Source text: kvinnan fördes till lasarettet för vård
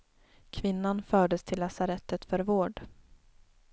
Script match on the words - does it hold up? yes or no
yes